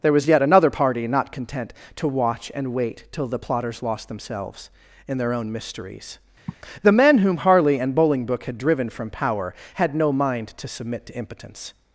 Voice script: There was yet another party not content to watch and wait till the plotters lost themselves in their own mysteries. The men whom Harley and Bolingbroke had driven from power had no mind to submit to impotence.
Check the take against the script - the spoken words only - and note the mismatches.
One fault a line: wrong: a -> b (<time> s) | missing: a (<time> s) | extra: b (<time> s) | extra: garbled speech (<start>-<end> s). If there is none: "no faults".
no faults